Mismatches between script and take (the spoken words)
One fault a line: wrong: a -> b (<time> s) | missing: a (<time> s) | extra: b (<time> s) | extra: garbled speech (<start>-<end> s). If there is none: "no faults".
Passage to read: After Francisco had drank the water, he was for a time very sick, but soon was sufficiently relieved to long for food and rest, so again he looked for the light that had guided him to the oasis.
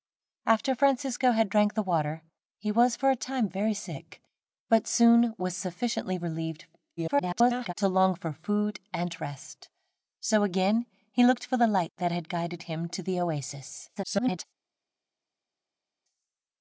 extra: garbled speech (7.0-7.7 s)
extra: garbled speech (14.0-14.4 s)